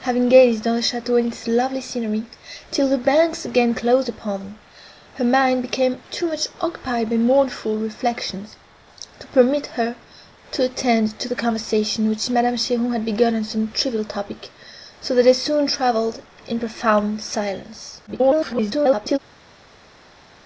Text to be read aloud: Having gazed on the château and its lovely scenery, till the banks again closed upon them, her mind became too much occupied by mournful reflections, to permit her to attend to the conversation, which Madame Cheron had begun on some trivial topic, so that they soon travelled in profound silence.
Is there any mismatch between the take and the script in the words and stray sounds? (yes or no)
yes